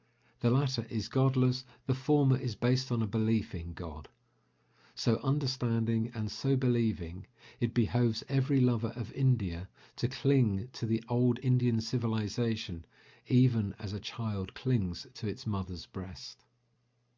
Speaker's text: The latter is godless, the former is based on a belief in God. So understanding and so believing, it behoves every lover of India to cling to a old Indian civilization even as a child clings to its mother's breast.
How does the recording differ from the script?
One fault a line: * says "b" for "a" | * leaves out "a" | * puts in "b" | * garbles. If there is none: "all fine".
* says "the" for "a"